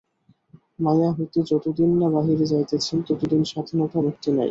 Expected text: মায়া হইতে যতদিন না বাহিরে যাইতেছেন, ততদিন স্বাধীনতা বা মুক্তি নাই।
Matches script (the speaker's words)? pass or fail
fail